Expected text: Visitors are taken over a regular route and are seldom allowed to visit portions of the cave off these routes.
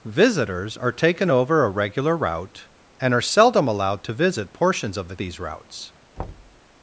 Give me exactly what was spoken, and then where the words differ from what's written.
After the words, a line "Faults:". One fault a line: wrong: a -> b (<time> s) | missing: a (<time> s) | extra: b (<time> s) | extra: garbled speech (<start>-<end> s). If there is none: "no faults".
Visitors are taken over a regular route and are seldom allowed to visit portions of the these routes.
Faults:
missing: cave off (5.2 s)